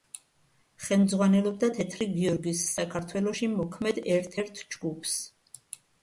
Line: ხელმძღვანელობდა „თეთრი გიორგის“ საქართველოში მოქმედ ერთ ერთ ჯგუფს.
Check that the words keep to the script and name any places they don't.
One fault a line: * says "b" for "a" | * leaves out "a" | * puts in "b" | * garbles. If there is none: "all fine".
all fine